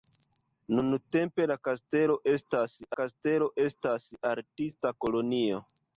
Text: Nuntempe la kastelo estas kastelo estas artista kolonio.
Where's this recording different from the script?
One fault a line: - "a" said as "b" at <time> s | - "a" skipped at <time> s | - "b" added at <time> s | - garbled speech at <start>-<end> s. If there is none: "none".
none